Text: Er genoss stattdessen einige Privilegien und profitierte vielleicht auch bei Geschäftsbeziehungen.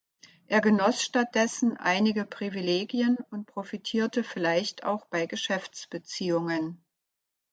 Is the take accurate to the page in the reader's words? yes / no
yes